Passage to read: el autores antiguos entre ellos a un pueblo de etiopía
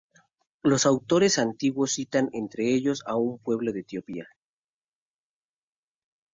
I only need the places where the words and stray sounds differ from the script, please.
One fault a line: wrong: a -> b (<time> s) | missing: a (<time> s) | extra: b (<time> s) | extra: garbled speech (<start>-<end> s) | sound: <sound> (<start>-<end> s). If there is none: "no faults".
wrong: el -> los (0.6 s)
extra: citan (1.9 s)